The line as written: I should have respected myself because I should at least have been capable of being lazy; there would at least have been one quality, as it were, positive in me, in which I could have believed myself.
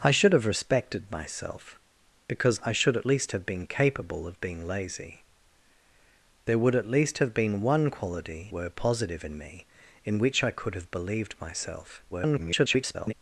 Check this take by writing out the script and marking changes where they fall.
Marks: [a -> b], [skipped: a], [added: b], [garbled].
I should have respected myself because I should at least have been capable of being lazy; there would at least have been one quality, [skipped: as it] were, positive in me, in which I could have believed myself. [garbled]